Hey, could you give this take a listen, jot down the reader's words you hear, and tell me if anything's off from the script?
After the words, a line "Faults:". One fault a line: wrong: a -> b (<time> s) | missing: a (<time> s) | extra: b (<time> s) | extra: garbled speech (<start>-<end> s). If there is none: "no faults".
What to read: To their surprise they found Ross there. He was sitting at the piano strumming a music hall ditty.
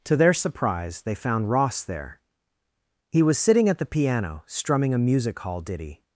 To their surprise they found Ross there. He was sitting at the piano strumming a music hall ditty.
Faults:
no faults